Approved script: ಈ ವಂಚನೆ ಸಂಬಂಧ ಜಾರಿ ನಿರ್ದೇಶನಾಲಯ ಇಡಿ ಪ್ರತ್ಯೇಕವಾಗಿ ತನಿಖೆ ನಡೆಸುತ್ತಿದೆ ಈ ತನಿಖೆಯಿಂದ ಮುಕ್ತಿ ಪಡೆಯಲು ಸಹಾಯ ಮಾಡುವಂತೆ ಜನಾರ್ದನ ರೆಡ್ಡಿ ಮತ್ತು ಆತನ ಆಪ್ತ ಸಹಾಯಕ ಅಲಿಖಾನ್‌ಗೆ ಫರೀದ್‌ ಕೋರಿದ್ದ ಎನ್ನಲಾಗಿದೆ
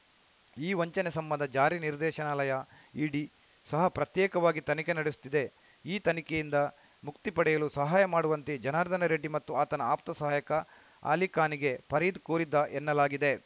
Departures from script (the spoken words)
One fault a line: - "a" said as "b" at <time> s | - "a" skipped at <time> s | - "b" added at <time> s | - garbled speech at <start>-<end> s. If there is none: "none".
- "ಸಹ" added at 3.7 s